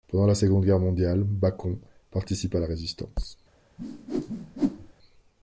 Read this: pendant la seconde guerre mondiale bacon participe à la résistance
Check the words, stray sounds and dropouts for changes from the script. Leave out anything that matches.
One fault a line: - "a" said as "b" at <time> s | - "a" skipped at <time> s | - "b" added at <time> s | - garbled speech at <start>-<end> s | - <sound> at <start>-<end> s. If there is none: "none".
- whoosh at 3.8-4.9 s